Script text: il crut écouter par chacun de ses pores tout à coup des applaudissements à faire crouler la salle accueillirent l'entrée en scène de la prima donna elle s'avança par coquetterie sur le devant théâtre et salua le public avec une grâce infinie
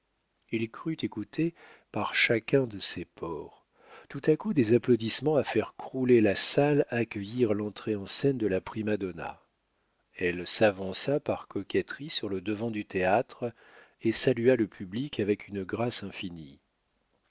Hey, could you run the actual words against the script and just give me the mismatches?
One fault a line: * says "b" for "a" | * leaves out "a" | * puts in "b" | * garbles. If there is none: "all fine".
* puts in "du"